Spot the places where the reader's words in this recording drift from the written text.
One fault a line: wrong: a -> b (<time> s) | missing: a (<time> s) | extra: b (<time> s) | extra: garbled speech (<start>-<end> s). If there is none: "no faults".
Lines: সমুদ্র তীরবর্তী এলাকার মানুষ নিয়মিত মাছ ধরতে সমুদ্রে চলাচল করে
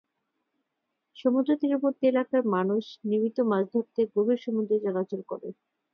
extra: গভীর (4.1 s)